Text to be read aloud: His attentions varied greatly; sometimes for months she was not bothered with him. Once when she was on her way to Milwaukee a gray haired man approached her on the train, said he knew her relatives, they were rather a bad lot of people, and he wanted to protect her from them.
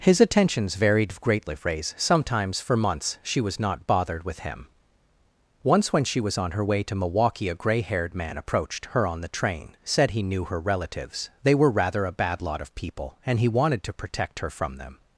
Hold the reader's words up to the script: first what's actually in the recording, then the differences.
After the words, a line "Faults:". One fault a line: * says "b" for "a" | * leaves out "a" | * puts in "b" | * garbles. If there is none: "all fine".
His attentions varied greatly; phrase sometimes for months she was not bothered with him. Once when she was on her way to Milwaukee a gray haired man approached her on the train, said he knew her relatives, they were rather a bad lot of people, and he wanted to protect her from them.
Faults:
* puts in "phrase"